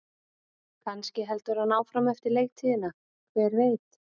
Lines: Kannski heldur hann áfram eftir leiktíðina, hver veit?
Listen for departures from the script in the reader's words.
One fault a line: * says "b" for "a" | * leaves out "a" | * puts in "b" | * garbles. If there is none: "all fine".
all fine